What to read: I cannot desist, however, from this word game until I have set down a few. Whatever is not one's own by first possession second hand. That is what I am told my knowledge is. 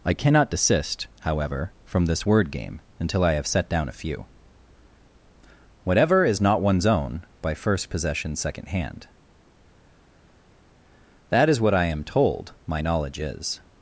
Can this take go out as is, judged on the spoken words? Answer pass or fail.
pass